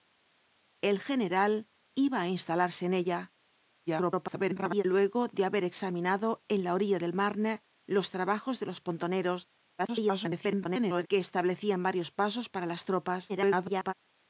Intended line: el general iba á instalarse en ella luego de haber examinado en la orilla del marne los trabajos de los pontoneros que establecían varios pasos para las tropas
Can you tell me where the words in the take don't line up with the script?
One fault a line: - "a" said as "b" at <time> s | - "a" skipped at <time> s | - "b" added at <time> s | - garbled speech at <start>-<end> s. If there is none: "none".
- garbled speech at 3.9-4.8 s
- garbled speech at 9.8-11.1 s
- garbled speech at 13.3-13.9 s